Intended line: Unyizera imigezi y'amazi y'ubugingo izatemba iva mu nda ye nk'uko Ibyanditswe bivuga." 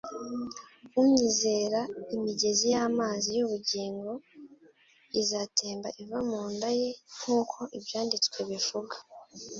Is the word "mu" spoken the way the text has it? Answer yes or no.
yes